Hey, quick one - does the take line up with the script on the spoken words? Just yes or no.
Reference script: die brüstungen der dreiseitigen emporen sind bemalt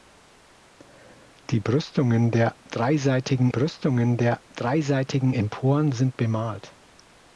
no